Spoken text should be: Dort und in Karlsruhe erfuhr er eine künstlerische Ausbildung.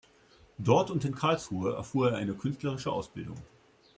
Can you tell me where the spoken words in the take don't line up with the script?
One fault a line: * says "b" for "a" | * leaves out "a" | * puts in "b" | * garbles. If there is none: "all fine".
all fine